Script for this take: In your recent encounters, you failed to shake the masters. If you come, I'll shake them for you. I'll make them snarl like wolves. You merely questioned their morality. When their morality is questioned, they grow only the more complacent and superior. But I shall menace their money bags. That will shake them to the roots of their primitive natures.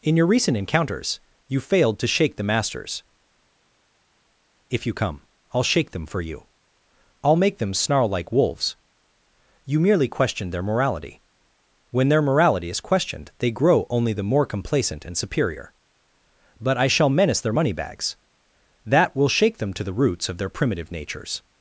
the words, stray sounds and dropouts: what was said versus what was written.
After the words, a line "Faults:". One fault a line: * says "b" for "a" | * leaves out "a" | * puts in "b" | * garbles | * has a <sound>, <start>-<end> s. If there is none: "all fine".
In your recent encounters, you failed to shake the masters. If you come, I'll shake them for you. I'll make them snarl like wolves. You merely questioned their morality. When their morality is questioned, they grow only the more complacent and superior. But I shall menace their money bags. That will shake them to the roots of their primitive natures.
Faults:
all fine